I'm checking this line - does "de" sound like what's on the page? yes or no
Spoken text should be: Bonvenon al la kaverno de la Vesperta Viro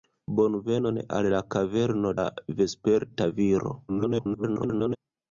no